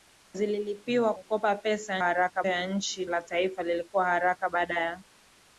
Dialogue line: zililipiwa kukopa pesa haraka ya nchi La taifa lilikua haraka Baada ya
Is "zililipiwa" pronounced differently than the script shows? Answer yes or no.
no